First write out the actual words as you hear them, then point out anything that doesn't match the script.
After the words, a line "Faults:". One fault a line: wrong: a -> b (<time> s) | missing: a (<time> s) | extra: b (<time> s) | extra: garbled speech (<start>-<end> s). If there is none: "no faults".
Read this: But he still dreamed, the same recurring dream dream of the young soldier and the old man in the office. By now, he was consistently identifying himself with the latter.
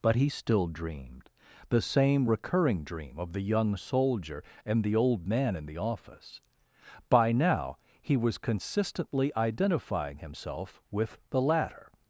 But he still dreamed, the same recurring dream of the young soldier and the old man in the office. By now, he was consistently identifying himself with the latter.
Faults:
missing: dream (3.2 s)